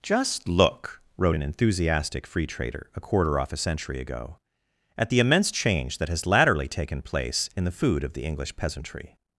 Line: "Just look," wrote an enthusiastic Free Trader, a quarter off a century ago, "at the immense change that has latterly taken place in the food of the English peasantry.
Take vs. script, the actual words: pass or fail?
pass